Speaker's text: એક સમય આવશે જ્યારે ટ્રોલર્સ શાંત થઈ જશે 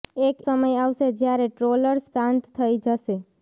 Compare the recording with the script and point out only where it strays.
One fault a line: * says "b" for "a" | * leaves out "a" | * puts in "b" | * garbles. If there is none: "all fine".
all fine